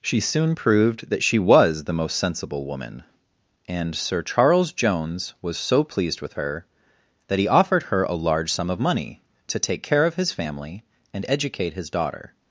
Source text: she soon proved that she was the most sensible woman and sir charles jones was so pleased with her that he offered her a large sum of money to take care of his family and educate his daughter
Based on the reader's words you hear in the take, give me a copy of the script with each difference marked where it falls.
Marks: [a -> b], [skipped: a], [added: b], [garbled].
she soon proved that she was the most sensible woman and sir charles jones was so pleased with her that he offered her a large sum of money to take care of his family and educate his daughter